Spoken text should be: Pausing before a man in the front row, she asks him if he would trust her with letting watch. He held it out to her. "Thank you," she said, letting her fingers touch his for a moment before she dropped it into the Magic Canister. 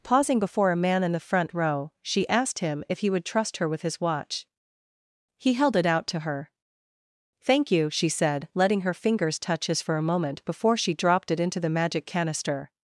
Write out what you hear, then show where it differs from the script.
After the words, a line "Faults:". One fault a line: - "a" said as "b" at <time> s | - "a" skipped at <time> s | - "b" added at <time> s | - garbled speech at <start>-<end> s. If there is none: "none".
Pausing before a man in the front row, she asked him if he would trust her with his watch. He held it out to her. "Thank you," she said, letting her fingers touch his for a moment before she dropped it into the Magic Canister.
Faults:
- "asks" said as "asked" at 2.3 s
- "letting" said as "his" at 3.8 s